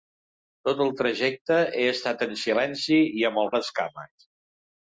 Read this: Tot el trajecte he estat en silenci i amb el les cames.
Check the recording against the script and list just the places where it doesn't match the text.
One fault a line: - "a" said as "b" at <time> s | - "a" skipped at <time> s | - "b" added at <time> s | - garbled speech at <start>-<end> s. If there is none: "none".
none